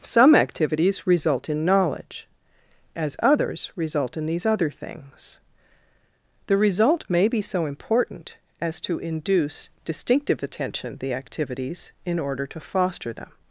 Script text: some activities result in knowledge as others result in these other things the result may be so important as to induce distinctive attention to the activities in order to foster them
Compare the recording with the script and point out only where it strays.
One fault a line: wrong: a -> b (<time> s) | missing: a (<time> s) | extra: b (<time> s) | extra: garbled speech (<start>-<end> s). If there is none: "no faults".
missing: to (11.0 s)